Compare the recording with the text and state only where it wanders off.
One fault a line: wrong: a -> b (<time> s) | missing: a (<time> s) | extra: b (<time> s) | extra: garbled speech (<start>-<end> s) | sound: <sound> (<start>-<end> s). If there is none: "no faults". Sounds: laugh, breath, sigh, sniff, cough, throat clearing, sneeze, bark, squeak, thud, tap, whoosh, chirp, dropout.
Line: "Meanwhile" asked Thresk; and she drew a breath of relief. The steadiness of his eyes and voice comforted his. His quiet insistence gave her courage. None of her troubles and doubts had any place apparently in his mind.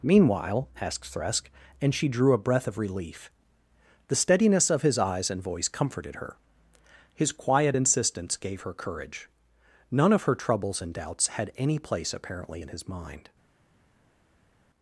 wrong: his -> her (6.2 s)